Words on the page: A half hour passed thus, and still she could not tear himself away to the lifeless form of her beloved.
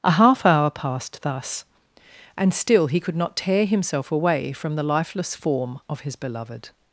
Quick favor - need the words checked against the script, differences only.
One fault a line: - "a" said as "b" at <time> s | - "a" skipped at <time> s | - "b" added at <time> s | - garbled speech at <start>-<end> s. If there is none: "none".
- "she" said as "he" at 2.9 s
- "to" said as "from" at 4.5 s
- "her" said as "his" at 6.0 s